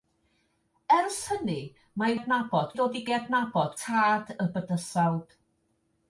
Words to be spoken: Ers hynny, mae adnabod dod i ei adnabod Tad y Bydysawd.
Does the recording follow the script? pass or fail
pass